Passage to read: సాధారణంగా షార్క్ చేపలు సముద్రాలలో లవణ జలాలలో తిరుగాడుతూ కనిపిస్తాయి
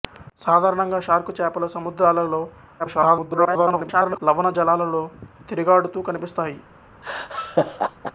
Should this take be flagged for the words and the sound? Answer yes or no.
yes